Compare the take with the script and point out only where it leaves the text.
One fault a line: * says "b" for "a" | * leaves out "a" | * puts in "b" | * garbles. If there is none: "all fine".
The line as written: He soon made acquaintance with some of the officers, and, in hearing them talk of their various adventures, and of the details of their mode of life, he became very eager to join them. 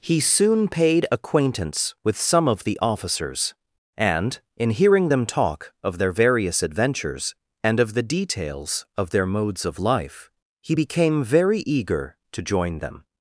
* says "paid" for "made"
* says "modes" for "mode"